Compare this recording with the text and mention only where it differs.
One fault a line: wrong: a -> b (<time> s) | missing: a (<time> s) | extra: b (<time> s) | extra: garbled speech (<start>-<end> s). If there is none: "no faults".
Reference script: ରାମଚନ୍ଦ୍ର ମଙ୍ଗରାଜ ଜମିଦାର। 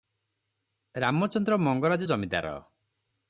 no faults